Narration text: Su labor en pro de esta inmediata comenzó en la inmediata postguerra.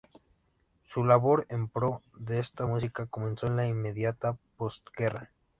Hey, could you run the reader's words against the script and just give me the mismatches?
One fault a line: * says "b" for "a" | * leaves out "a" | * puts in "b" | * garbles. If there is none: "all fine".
* says "música" for "inmediata"